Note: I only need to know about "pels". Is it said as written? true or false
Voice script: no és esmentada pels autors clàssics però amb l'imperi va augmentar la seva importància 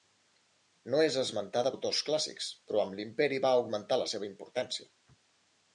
false